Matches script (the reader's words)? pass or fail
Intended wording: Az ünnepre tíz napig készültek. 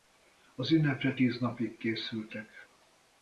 pass